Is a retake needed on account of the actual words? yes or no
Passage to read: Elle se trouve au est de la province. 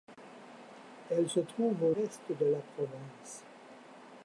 no